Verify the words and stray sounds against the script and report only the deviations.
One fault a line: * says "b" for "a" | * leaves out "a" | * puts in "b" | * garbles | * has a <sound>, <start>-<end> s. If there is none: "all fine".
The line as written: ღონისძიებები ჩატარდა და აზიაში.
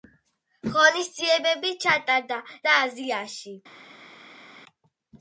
all fine